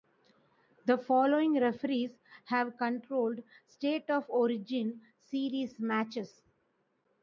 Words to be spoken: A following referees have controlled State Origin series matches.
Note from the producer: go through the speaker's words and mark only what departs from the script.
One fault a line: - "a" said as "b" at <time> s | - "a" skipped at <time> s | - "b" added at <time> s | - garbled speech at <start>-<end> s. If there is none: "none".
- "A" said as "The" at 0.8 s
- "of" added at 4.1 s